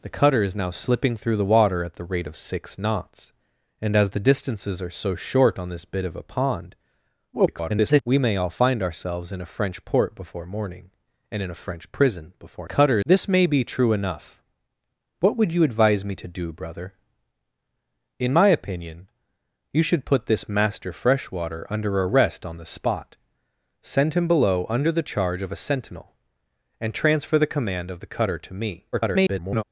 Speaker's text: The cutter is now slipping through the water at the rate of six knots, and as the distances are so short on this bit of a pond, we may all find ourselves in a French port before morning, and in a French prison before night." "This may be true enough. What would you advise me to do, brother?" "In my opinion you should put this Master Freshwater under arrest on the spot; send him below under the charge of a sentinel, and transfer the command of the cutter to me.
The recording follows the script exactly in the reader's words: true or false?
false